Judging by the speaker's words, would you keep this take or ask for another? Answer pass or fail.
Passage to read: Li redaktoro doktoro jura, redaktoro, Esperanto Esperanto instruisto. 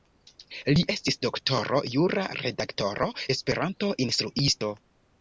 fail